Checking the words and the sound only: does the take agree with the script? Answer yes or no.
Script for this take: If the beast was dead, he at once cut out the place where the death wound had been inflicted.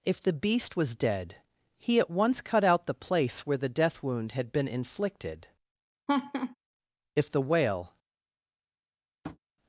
no